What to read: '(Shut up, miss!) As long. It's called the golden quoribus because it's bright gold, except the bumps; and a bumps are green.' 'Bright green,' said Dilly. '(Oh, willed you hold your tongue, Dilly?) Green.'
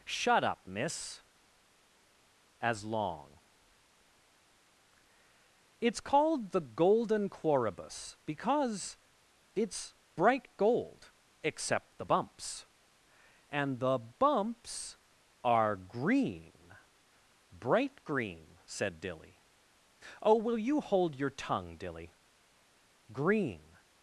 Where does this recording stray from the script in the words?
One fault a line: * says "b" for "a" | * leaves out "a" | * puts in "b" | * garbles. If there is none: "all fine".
* says "the" for "a"
* says "will" for "willed"